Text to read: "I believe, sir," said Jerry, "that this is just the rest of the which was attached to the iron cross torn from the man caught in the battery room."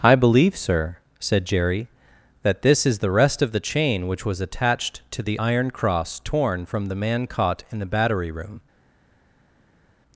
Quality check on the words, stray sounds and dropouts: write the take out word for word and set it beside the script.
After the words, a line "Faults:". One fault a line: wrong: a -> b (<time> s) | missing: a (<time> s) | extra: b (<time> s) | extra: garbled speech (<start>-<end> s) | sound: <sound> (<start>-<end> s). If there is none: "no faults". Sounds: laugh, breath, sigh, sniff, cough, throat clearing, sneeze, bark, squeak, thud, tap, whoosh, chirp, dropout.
"I believe, sir," said Jerry, "that this is the rest of the chain which was attached to the iron cross torn from the man caught in the battery room."
Faults:
missing: just (3.0 s)
extra: chain (3.6 s)